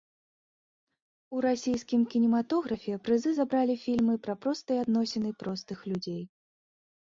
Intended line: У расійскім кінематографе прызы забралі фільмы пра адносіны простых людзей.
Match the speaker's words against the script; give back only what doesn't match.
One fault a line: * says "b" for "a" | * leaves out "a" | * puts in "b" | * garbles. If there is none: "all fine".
* puts in "простыя"